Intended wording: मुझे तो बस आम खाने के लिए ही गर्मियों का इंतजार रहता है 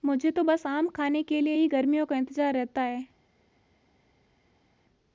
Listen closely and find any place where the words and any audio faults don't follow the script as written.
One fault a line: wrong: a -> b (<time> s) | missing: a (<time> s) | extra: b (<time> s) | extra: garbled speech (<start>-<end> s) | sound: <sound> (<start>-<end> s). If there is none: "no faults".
no faults